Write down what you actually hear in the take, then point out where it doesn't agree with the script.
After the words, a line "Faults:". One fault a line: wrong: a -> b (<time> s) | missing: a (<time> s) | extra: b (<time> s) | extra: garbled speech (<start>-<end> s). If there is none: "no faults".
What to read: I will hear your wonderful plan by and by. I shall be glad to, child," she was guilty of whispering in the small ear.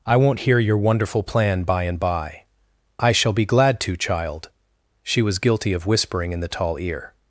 I won't hear your wonderful plan by and by. I shall be glad to, child," she was guilty of whispering in the tall ear.
Faults:
wrong: will -> won't (0.2 s)
wrong: small -> tall (6.5 s)